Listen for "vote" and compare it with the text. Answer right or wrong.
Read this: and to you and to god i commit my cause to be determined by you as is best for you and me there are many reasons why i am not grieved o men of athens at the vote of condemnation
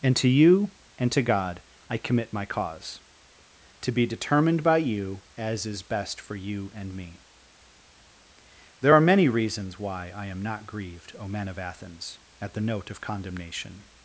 wrong